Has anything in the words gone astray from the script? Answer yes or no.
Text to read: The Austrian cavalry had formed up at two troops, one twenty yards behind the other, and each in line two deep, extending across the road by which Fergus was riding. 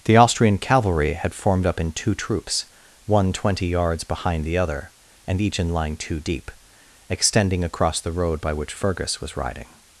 yes